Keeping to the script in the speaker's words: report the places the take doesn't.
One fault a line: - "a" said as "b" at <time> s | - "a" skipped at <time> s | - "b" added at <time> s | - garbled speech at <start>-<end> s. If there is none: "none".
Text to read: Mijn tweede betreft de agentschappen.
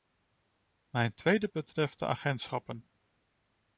none